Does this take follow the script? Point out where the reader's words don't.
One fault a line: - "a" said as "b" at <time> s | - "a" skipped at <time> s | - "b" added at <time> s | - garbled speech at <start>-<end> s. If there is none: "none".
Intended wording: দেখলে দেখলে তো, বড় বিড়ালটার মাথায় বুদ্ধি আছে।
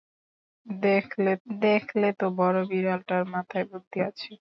none